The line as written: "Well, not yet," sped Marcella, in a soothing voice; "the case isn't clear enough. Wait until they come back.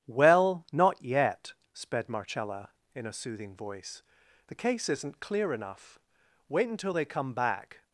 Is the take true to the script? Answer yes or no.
yes